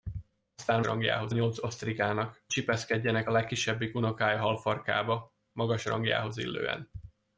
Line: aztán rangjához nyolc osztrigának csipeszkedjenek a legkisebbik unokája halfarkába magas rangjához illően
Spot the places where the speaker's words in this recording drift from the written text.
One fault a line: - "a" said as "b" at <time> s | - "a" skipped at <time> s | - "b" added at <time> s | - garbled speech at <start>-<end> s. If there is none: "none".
none